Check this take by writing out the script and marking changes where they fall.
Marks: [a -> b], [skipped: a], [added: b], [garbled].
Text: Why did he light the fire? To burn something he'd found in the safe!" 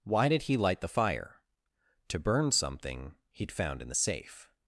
Why did he light the fire? To burn something he'd found in the safe!"